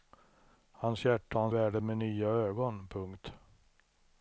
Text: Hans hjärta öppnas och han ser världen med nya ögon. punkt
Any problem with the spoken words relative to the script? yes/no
yes